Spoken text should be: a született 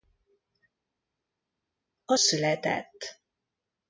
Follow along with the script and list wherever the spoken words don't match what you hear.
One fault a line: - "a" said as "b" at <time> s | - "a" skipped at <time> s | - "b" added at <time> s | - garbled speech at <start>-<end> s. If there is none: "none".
none